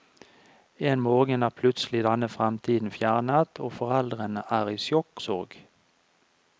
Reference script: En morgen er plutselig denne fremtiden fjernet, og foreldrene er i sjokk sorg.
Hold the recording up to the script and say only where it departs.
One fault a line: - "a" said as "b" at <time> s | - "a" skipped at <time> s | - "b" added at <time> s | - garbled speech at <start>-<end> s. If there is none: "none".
none